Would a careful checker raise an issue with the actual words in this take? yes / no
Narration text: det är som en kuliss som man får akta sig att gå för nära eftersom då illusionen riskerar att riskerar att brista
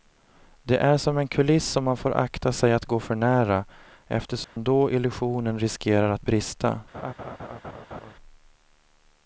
yes